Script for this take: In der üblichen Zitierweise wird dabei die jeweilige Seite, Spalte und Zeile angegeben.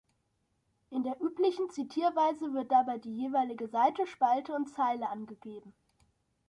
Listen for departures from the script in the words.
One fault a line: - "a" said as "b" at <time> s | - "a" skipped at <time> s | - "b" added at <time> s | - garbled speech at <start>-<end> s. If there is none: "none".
none